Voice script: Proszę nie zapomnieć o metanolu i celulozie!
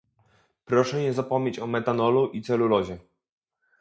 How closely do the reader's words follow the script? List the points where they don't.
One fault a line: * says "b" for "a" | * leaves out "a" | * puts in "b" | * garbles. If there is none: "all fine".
all fine